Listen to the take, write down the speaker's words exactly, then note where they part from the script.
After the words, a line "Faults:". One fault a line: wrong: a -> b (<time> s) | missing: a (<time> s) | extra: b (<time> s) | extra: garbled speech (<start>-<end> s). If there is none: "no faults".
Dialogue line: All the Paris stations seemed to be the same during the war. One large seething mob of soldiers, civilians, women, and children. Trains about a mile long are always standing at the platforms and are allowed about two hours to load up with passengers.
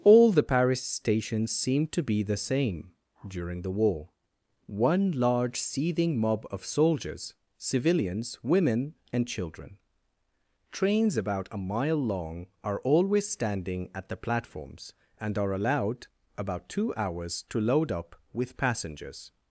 All the Paris stations seemed to be the same during the war. One large seething mob of soldiers, civilians, women, and children. Trains about a mile long are always standing at the platforms and are allowed about two hours to load up with passengers.
Faults:
no faults